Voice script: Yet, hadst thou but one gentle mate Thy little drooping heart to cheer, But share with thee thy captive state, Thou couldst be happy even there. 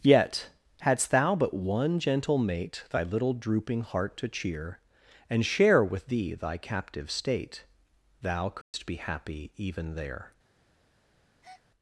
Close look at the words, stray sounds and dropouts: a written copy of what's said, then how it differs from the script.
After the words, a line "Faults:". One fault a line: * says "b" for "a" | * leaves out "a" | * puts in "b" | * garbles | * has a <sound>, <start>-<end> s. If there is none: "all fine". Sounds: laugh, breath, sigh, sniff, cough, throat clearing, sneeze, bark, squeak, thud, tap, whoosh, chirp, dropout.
Yet, hadst thou but one gentle mate Thy little drooping heart to cheer, And share with thee thy captive state, Thou couldst be happy even there.
Faults:
* says "And" for "But"
* has a dropout, 8.6-8.7 s
* has a breath, 11.4-11.6 s